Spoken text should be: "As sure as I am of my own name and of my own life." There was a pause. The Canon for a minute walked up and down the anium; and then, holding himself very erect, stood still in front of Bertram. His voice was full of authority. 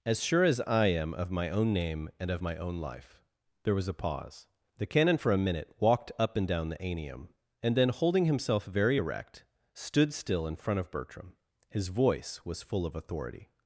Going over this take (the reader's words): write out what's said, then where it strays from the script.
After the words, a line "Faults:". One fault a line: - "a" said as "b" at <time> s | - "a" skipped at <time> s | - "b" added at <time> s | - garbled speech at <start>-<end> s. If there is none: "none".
"As sure as I am of my own name and of my own life." There was a pause. The Canon for a minute walked up and down the anium; and then, holding himself very erect, stood still in front of Bertram. His voice was full of authority.
Faults:
none